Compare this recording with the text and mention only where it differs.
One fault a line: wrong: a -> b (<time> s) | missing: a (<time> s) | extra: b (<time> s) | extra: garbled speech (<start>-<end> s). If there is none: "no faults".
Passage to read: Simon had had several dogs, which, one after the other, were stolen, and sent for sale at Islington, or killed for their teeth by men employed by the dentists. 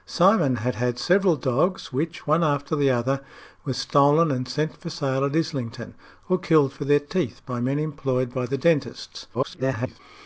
extra: garbled speech (9.3-10.0 s)